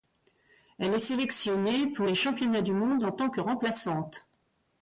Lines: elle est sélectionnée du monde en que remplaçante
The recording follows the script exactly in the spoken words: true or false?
false